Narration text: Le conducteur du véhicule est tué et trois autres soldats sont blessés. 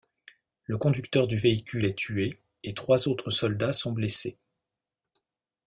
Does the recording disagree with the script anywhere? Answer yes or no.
no